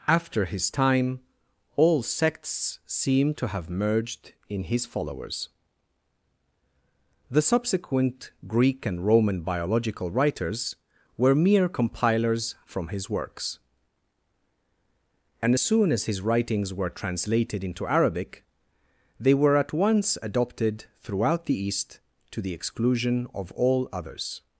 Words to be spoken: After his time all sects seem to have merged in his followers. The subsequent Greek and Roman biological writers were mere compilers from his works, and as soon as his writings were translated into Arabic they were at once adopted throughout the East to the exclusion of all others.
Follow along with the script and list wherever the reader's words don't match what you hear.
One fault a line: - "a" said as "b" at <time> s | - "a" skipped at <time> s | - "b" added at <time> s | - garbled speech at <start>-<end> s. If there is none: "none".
- "as" skipped at 15.5 s